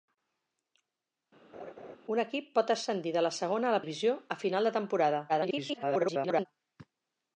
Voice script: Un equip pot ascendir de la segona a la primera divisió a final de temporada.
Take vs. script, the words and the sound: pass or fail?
fail